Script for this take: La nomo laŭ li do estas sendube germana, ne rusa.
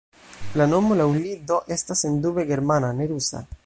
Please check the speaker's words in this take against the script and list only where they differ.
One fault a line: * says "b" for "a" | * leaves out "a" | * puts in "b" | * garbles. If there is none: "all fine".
all fine